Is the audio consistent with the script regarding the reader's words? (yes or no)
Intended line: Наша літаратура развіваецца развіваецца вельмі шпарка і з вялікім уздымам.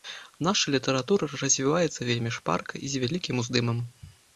no